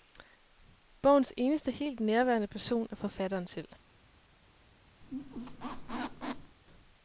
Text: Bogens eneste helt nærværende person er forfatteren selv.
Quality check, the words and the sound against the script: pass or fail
fail